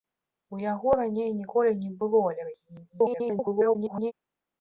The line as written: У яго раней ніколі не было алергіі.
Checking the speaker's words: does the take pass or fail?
fail